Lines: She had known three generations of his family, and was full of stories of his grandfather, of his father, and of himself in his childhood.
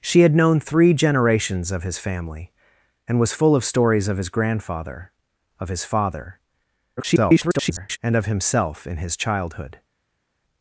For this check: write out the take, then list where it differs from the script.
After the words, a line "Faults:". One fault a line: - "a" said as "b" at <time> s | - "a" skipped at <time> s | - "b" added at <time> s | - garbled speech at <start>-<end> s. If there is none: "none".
She had known three generations of his family, and was full of stories of his grandfather, of his father, [garbled] and of himself in his childhood.
Faults:
- garbled speech at 7.0-8.0 s